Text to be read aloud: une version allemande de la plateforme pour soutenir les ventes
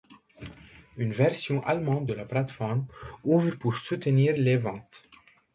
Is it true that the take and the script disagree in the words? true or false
true